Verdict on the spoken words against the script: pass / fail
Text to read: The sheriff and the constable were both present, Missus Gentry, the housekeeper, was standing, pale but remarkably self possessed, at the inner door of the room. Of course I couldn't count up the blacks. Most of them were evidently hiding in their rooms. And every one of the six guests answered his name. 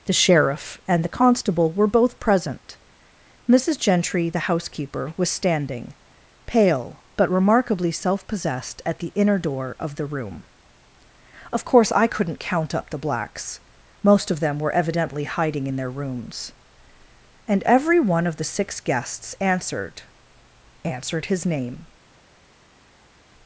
fail